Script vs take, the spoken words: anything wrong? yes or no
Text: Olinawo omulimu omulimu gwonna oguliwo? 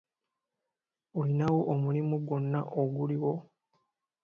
yes